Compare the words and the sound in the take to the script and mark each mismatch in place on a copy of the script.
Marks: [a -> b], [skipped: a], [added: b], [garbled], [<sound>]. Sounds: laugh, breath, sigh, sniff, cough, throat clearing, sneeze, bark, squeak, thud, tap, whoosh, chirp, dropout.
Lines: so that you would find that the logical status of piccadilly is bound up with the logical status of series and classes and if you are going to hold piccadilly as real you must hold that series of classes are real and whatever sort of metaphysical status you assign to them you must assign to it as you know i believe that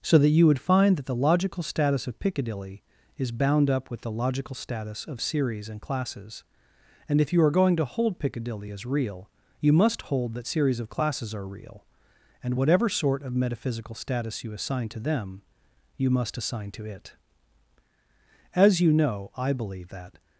so that you would find that the logical status of piccadilly is bound up with the logical status of series and classes and if you are going to hold piccadilly as real you must hold that series of classes are real and whatever sort of metaphysical status you assign to them you must assign to it as you know i believe that